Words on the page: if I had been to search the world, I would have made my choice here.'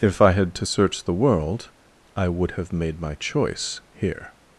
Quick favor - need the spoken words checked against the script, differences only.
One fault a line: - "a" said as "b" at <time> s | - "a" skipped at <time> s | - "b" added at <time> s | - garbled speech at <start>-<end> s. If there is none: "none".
- "been" skipped at 0.5 s